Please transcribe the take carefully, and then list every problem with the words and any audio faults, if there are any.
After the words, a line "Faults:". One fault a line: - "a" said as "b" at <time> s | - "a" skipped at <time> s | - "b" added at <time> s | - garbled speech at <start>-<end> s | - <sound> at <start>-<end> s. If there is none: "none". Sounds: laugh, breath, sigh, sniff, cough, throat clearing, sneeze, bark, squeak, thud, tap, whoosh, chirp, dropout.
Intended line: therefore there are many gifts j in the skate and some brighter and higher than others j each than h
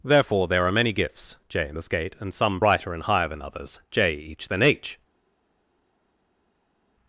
therefore there are many gifts j in the skate and some brighter and higher than others j each than h
Faults:
none